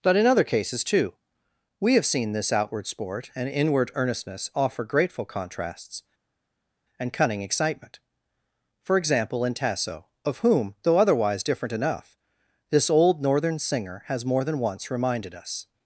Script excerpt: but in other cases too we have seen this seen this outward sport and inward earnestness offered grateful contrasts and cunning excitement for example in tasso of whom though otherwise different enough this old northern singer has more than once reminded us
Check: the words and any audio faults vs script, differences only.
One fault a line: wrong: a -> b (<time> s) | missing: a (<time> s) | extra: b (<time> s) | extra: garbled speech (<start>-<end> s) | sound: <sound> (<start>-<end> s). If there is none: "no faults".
missing: seen this (2.5 s)
wrong: offered -> offer (4.5 s)